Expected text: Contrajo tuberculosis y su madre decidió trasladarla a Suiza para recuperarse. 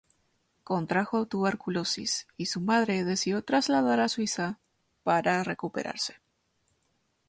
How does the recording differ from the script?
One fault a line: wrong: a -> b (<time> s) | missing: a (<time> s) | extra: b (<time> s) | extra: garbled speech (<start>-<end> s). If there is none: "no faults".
no faults